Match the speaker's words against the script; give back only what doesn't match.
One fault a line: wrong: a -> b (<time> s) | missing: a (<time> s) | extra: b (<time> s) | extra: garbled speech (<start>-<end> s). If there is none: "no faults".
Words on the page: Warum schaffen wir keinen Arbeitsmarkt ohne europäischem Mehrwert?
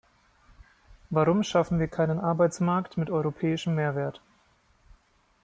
wrong: ohne -> mit (3.0 s)